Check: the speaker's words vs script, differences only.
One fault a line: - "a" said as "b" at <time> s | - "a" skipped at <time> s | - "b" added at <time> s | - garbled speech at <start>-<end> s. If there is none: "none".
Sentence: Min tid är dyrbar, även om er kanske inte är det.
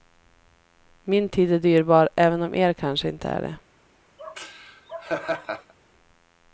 none